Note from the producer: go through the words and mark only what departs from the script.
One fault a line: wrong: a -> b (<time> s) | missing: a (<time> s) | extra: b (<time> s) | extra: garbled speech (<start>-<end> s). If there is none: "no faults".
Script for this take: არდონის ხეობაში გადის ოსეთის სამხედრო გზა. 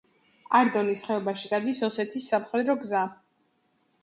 no faults